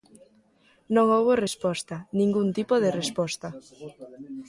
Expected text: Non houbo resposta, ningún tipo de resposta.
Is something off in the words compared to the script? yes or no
no